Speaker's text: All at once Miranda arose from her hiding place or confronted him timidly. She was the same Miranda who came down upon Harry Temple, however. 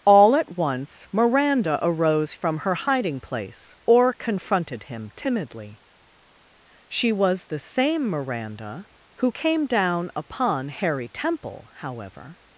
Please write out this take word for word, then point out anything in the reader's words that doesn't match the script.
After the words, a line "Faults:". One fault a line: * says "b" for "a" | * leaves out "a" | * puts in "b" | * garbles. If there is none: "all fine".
All at once Miranda arose from her hiding place or confronted him timidly. She was the same Miranda who came down upon Harry Temple, however.
Faults:
all fine